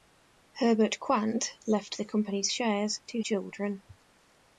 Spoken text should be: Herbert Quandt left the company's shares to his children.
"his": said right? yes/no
no